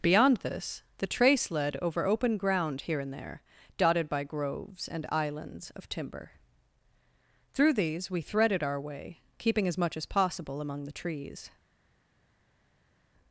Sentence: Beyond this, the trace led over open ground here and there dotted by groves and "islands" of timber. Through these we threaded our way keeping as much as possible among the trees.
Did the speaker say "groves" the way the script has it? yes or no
yes